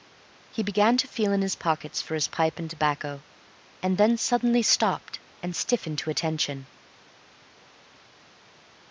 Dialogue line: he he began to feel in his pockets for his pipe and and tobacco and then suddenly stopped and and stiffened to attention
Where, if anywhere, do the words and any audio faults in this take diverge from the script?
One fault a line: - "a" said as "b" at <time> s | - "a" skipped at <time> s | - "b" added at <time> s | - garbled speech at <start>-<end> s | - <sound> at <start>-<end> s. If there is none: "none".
- "he" skipped at 0.6 s
- "and" skipped at 2.7 s
- "and" skipped at 5.5 s